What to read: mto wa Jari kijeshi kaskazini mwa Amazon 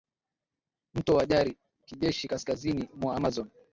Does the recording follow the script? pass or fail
pass